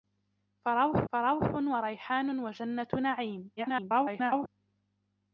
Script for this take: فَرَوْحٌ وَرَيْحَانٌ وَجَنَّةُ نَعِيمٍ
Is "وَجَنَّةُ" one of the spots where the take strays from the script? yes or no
no